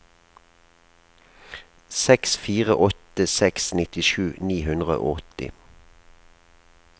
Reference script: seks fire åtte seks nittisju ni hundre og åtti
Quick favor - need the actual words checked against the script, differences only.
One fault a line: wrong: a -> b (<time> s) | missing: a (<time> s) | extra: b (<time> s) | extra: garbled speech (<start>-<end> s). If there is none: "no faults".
no faults